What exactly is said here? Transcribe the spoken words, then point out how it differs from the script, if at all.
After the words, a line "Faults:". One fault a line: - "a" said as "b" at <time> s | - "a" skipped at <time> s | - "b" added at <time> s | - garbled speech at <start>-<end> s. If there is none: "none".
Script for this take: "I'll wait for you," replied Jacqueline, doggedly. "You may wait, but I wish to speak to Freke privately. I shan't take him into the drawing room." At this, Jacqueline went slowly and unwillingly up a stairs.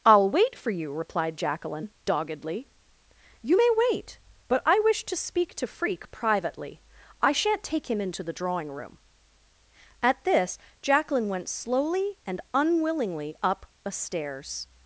"I'll wait for you," replied Jacqueline, doggedly. "You may wait, but I wish to speak to Freke privately. I shan't take him into the drawing room." At this, Jacqueline went slowly and unwillingly up a stairs.
Faults:
none